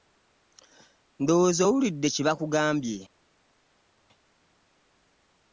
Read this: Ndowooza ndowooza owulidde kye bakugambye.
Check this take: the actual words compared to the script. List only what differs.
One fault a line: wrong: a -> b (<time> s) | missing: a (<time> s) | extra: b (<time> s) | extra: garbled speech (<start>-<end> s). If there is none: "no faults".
missing: ndowooza (1.6 s)